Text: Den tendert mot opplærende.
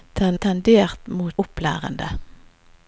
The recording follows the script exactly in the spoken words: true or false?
true